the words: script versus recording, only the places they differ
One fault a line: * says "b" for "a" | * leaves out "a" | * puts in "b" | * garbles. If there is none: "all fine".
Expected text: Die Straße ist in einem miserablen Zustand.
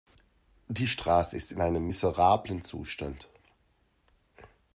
all fine